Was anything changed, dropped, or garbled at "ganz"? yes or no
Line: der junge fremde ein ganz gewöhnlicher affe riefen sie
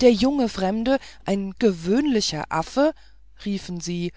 yes